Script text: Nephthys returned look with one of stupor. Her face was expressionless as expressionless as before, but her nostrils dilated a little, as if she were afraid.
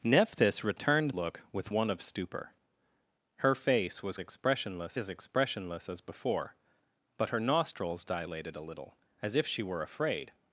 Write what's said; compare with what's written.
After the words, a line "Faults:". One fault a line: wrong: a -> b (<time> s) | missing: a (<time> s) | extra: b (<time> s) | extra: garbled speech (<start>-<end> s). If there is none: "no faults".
Nephthys returned look with one of stupor. Her face was expressionless as expressionless as before, but her nostrils dilated a little, as if she were afraid.
Faults:
no faults